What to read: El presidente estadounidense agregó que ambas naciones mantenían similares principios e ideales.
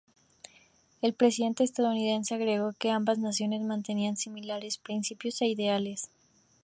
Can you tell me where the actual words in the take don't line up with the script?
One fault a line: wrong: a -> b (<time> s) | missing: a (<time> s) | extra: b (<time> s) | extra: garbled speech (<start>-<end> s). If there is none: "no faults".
no faults